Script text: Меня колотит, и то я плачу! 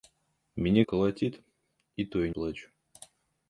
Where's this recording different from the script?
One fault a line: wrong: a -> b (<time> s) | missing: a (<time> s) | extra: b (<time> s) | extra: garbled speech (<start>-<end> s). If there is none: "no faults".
no faults